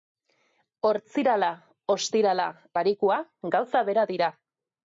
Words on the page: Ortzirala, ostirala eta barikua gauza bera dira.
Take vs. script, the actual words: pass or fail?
fail